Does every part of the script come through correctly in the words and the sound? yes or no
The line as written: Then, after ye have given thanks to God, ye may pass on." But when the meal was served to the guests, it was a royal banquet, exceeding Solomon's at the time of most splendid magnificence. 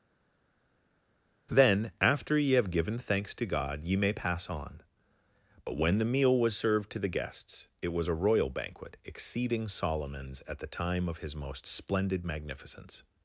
no